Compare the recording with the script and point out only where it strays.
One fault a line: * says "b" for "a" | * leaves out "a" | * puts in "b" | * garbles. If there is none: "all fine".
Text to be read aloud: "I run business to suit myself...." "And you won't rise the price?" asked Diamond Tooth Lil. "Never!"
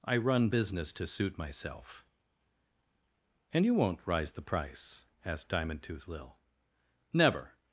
all fine